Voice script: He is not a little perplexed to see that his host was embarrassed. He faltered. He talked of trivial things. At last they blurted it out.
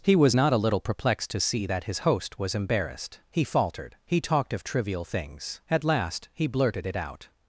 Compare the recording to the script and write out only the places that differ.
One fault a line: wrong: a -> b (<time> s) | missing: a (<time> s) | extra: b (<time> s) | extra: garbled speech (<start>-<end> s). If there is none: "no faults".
wrong: is -> was (0.1 s)
wrong: they -> he (6.3 s)